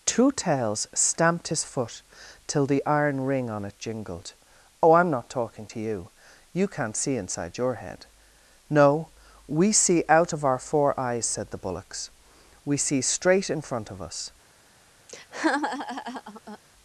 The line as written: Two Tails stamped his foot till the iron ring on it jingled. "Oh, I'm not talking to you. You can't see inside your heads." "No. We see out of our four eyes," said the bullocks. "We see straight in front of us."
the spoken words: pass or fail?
fail